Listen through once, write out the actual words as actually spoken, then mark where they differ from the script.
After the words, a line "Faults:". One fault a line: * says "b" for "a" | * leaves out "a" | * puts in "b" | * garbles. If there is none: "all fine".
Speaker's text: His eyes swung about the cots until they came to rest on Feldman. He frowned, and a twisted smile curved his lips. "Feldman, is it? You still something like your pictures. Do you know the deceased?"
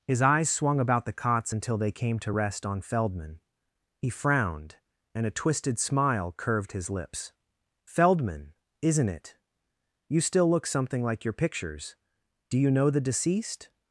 His eyes swung about the cots until they came to rest on Feldman. He frowned, and a twisted smile curved his lips. "Feldman, isn't it? You still look something like your pictures. Do you know the deceased?"
Faults:
* says "isn't" for "is"
* puts in "look"